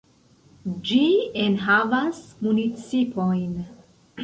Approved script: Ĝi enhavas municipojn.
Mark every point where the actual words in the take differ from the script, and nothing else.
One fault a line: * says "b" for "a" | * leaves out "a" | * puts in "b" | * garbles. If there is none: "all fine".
all fine